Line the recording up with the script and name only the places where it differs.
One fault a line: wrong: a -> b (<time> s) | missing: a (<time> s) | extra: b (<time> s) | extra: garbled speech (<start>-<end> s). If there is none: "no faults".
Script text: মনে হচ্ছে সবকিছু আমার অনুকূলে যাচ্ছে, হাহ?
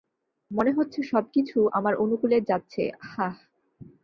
no faults